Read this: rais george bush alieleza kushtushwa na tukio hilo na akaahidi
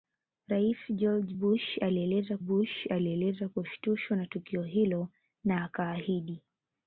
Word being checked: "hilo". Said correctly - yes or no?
yes